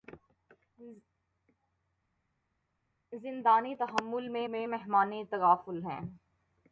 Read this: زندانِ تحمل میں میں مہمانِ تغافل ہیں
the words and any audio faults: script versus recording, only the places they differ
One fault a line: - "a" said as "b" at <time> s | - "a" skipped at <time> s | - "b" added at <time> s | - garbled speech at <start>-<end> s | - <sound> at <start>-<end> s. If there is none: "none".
none